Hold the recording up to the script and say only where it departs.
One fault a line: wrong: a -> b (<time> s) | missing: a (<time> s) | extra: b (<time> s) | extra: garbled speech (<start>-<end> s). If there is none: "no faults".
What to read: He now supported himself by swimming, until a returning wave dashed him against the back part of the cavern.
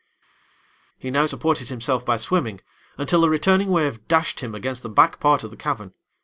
no faults